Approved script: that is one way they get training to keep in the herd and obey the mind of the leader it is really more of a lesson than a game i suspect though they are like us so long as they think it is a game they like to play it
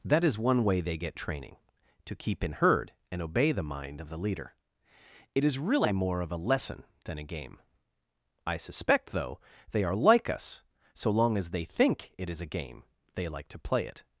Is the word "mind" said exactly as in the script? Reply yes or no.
yes